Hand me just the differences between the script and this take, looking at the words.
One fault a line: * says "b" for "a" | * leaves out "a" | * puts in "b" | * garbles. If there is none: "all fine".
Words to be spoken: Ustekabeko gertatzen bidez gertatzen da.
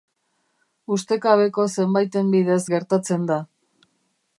* says "zenbaiten" for "gertatzen"